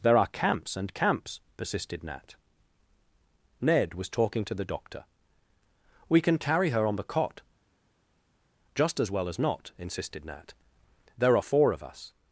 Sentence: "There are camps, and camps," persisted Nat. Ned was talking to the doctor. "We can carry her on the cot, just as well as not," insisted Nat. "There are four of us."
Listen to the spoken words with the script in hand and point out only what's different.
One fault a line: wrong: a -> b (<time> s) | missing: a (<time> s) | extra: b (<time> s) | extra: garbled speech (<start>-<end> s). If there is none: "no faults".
no faults